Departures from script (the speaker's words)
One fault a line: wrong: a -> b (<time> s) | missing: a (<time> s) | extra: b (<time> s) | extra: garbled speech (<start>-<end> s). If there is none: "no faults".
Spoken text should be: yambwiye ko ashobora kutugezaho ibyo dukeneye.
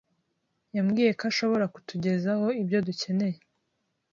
no faults